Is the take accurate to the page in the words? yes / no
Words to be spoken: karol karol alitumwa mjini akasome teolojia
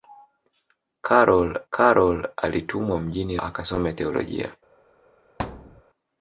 yes